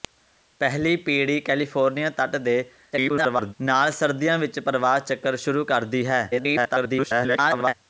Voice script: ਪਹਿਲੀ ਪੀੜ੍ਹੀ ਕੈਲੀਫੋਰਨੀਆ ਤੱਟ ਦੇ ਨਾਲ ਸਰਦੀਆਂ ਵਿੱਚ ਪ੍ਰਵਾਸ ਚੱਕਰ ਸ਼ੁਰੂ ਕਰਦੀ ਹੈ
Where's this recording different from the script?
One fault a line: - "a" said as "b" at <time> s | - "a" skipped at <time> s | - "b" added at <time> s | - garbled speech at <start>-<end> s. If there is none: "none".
- garbled speech at 2.9-3.5 s
- garbled speech at 6.3-7.7 s